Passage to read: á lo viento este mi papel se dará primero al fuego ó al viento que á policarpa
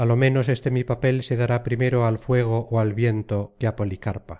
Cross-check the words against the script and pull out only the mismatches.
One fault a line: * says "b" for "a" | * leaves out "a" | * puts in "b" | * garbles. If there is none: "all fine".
* says "menos" for "viento"